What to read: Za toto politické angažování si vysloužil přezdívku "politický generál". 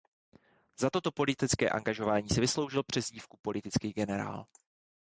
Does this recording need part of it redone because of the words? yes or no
no